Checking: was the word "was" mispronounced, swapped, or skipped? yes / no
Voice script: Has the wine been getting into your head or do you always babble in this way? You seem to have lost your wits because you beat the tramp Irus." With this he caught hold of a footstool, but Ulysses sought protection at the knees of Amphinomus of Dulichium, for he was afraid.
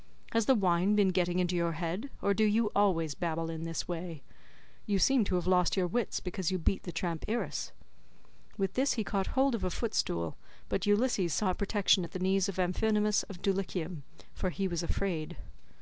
no